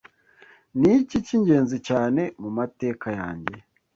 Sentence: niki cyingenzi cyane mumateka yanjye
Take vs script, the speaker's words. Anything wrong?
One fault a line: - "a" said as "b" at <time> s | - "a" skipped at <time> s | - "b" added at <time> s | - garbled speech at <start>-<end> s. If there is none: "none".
none